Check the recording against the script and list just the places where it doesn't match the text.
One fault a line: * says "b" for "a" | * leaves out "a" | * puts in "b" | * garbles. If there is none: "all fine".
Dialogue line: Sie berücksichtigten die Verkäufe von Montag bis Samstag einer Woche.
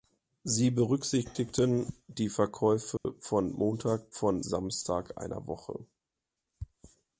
* says "von" for "bis"